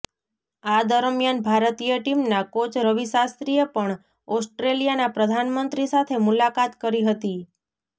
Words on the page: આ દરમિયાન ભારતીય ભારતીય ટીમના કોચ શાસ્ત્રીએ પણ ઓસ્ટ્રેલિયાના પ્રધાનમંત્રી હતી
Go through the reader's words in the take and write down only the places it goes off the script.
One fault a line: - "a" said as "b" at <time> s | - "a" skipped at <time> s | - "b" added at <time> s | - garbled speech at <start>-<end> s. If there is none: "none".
- "ભારતીય" skipped at 2.0 s
- "રવિ" added at 2.8 s
- "સાથે મુલાકાત કરી" added at 5.9 s